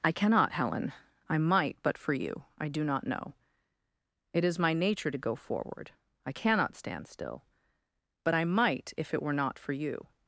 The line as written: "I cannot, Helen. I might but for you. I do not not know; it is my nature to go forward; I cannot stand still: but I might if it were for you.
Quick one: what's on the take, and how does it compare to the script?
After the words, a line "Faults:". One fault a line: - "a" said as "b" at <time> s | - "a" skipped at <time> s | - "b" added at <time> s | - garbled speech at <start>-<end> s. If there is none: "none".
"I cannot, Helen. I might but for you. I do not know; it is my nature to go forward; I cannot stand still: but I might if it were not for you.
Faults:
- "not" skipped at 3.1 s
- "not" added at 9.3 s